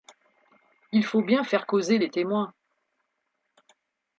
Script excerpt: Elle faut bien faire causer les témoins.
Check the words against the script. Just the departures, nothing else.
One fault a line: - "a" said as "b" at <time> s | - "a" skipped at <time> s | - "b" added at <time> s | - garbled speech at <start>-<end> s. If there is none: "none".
- "Elle" said as "Il" at 0.9 s